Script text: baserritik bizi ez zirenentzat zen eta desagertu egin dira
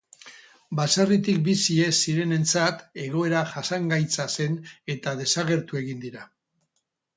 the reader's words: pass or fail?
fail